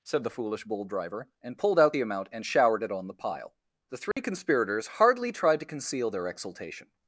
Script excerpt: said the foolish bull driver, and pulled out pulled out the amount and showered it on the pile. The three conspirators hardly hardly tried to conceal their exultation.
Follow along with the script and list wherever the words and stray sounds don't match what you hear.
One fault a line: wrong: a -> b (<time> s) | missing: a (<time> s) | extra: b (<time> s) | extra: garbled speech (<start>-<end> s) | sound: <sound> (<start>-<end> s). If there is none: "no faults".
missing: pulled out (1.9 s)
sound: dropout (4.1-4.2 s)
missing: hardly (5.3 s)